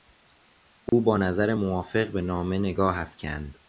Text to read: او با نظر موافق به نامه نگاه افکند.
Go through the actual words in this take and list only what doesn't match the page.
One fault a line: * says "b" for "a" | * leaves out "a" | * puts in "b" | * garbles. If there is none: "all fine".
all fine